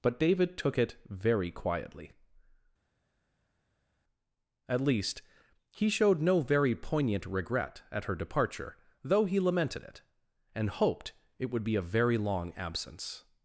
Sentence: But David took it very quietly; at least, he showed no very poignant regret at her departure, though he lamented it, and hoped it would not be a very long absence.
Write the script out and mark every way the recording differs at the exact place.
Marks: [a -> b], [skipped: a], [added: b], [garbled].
But David took it very quietly; at least, he showed no very poignant regret at her departure, though he lamented it, and hoped it would [skipped: not] be a very long absence.